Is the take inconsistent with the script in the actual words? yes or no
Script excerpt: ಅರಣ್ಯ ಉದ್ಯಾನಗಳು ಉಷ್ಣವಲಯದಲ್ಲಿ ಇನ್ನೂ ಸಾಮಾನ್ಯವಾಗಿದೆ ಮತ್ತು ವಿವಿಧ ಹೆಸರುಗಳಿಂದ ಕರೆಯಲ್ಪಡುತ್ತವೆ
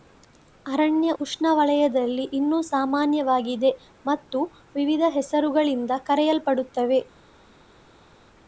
yes